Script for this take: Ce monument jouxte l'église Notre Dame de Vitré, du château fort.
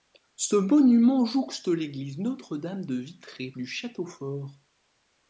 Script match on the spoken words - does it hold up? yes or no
yes